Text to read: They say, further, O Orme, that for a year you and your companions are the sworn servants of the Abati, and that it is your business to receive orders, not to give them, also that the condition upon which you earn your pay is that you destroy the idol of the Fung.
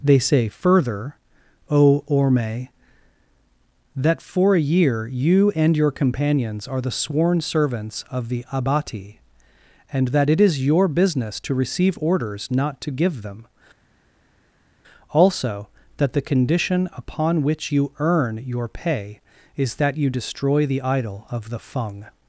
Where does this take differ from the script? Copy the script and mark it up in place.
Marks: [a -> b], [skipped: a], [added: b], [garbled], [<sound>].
They say, further, O Orme, that for a year you and your companions are the sworn servants of the Abati, and that it is your business to receive orders, not to give them, also that the condition upon which you earn your pay is that you destroy the idol of the Fung.